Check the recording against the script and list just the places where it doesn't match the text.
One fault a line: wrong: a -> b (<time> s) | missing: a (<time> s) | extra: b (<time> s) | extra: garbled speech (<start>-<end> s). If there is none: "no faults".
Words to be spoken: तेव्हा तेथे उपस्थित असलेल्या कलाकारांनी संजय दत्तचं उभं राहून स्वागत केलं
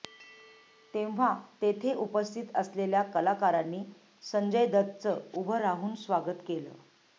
no faults